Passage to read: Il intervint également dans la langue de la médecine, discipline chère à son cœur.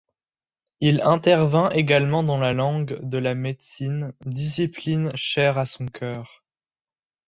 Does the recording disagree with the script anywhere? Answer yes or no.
no